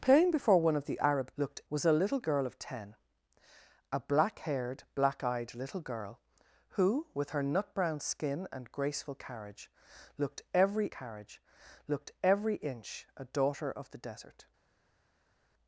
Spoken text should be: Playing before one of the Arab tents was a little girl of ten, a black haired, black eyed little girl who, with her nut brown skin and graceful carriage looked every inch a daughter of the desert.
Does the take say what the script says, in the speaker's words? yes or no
no